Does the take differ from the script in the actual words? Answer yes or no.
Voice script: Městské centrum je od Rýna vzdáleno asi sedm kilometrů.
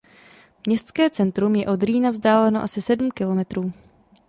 no